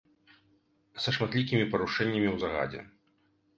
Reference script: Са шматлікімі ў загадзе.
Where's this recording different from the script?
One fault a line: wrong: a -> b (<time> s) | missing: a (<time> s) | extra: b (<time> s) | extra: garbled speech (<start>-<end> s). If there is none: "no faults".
extra: парушэннямі (1.8 s)